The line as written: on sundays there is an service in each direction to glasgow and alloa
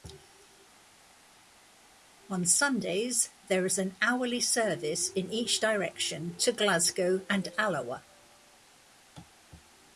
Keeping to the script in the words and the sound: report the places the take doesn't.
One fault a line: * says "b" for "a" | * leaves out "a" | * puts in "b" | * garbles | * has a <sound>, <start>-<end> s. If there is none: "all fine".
* puts in "hourly"